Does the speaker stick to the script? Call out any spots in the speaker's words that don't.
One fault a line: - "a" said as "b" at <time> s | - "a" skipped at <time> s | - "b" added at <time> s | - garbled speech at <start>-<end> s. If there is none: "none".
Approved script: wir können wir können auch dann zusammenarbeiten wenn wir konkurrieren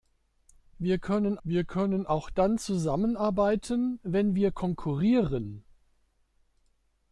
none